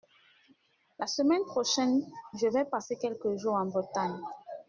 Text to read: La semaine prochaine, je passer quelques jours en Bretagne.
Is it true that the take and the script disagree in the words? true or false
true